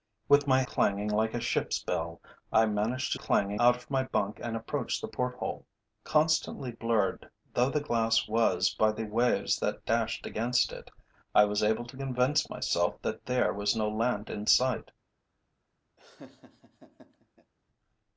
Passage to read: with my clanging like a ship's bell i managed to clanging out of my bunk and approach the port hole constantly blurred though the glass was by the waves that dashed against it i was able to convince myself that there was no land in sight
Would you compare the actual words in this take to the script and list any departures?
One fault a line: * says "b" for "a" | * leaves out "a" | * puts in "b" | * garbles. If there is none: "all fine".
all fine